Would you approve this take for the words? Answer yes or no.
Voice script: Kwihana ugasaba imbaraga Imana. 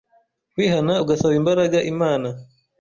yes